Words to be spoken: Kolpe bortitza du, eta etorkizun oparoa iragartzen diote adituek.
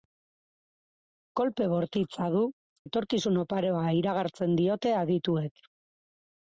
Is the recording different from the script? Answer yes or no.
yes